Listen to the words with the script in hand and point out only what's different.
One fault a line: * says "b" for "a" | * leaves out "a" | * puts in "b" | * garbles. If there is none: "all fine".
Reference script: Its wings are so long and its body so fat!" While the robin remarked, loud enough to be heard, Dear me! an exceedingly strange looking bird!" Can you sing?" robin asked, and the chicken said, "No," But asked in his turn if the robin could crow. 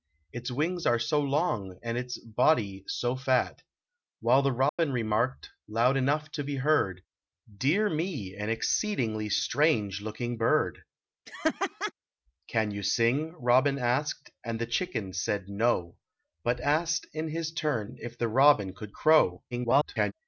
* garbles